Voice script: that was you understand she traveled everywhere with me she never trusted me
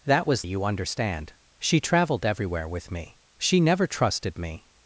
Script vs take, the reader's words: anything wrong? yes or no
no